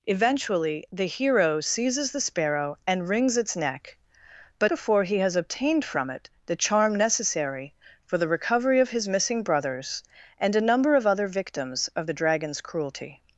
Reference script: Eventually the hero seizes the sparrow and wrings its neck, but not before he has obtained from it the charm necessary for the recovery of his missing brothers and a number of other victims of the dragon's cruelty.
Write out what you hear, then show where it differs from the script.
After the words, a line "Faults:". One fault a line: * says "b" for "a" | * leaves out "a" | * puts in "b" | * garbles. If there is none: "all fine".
Eventually the hero seizes the sparrow and wrings its neck, but before he has obtained from it the charm necessary for the recovery of his missing brothers and a number of other victims of the dragon's cruelty.
Faults:
* leaves out "not"